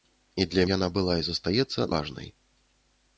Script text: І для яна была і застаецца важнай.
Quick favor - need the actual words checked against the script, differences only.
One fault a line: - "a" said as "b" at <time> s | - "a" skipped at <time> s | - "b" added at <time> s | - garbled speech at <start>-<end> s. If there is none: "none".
none